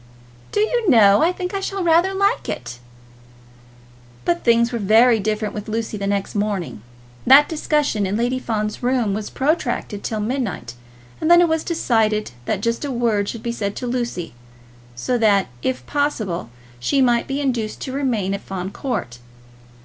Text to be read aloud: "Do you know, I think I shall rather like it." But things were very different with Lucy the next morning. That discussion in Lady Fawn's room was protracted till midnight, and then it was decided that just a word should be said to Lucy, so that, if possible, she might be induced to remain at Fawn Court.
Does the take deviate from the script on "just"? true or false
false